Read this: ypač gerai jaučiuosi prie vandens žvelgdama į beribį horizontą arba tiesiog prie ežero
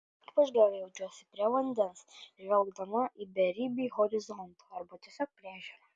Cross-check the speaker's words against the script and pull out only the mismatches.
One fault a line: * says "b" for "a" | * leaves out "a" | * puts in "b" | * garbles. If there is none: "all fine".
all fine